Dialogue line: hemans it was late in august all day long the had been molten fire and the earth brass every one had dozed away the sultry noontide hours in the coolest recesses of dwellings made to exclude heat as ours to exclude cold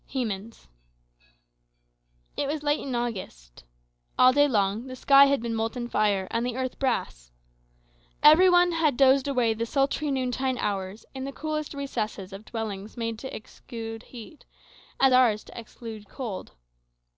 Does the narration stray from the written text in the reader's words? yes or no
yes